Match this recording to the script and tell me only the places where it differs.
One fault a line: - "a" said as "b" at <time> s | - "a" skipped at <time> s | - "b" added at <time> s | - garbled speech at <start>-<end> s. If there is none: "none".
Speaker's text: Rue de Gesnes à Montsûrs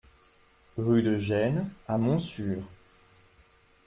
none